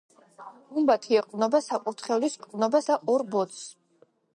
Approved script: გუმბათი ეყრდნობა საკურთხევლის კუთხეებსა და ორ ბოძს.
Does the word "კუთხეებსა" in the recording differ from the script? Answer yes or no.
yes